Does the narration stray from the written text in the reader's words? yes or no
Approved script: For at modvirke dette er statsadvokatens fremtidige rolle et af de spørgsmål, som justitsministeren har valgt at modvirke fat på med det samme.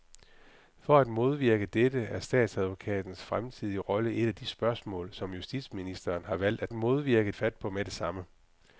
no